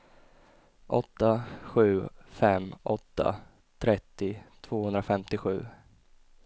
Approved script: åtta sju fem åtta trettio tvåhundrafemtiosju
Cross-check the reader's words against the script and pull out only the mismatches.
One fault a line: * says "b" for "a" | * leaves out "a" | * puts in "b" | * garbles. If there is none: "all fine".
all fine